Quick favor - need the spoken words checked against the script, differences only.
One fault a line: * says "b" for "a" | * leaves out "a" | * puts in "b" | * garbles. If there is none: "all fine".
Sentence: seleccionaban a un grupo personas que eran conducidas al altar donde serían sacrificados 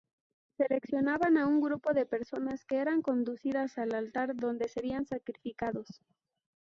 * puts in "de"